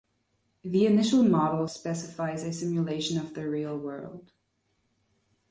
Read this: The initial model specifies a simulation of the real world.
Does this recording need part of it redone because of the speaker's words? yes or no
no